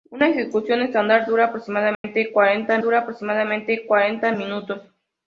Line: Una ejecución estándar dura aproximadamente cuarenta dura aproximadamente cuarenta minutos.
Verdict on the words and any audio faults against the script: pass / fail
fail